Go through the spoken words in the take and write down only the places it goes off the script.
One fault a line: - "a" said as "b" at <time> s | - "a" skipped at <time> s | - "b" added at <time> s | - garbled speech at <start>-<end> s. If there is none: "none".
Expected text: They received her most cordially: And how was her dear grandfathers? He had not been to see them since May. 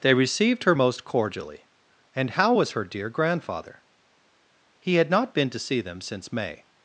- "grandfathers" said as "grandfather" at 3.1 s